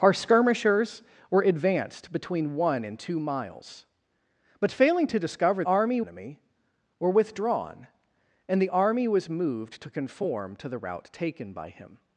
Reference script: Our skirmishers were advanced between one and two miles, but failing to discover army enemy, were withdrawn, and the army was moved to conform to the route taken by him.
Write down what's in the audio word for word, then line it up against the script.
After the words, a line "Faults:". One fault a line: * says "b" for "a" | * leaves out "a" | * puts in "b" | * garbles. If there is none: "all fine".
Our skirmishers were advanced between one and two miles, but failing to discover army enemy, were withdrawn, and the army was moved to conform to the route taken by him.
Faults:
all fine